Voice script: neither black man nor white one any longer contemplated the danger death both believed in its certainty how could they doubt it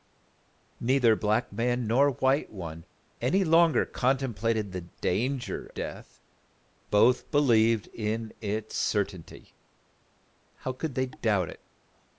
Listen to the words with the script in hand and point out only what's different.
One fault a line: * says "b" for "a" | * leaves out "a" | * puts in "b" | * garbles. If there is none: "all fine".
all fine